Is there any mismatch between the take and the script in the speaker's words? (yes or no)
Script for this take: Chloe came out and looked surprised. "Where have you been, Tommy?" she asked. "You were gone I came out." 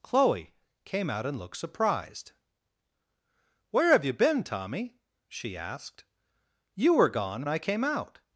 no